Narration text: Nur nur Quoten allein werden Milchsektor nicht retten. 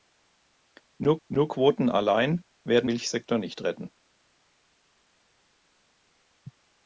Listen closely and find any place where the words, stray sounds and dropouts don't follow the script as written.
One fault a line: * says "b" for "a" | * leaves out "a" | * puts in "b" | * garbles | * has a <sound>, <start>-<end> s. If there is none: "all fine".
all fine